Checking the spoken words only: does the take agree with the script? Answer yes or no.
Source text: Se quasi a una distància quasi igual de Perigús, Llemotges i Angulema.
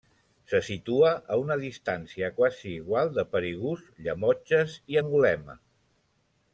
no